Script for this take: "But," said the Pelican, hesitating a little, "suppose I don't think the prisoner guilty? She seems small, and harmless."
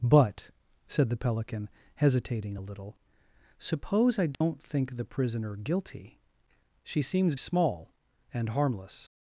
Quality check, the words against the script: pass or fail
pass